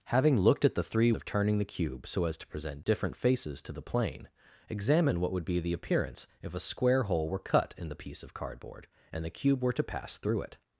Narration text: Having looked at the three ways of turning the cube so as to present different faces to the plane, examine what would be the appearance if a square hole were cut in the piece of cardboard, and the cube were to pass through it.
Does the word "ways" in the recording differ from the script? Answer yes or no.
yes